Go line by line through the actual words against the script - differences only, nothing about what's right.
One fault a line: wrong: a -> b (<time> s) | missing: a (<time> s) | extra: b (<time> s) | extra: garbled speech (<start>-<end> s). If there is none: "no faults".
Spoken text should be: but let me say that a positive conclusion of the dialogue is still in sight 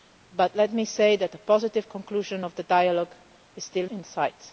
no faults